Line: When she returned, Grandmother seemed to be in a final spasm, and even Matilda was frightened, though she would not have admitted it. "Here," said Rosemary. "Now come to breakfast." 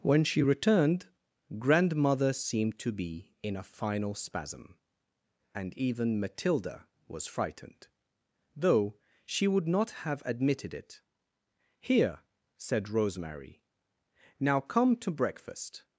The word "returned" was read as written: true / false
true